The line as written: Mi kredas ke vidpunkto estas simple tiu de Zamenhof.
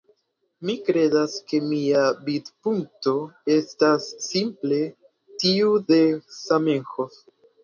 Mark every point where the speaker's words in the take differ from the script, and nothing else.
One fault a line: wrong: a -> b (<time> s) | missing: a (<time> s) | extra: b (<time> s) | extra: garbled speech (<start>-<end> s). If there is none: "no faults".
extra: mia (1.7 s)